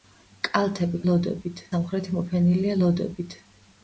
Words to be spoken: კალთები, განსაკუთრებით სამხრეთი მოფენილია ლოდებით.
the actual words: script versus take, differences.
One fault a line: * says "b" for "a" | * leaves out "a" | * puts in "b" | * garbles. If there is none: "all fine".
* says "ლოდებით" for "განსაკუთრებით"